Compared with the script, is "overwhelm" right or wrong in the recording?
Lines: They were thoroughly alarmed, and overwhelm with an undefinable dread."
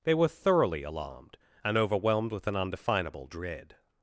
wrong